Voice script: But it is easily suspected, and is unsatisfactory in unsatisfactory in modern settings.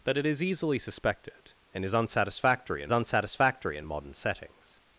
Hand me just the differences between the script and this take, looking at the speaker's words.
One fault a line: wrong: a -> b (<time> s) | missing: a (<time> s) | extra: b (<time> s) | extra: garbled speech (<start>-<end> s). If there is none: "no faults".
no faults